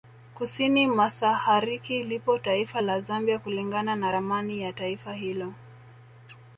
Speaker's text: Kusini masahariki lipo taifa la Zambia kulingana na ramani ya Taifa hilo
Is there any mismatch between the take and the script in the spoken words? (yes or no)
no